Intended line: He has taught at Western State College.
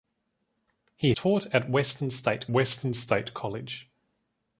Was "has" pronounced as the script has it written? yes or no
no